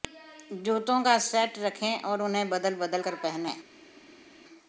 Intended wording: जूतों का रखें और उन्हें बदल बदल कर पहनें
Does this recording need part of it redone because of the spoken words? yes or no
yes